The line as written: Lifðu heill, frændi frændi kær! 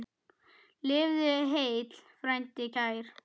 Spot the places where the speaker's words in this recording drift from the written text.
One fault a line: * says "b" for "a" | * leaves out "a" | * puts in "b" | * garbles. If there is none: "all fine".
* leaves out "frændi"